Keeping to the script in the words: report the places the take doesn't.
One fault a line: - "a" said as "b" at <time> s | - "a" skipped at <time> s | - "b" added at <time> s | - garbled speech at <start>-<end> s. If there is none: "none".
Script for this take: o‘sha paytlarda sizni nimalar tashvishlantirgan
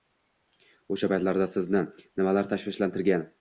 none